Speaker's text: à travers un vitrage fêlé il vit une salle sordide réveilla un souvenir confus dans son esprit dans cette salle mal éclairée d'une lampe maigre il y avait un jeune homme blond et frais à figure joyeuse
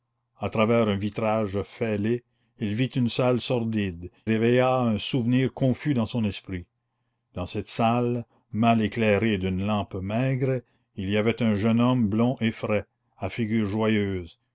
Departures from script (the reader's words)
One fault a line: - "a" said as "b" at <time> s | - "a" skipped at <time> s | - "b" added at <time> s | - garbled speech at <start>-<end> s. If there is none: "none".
none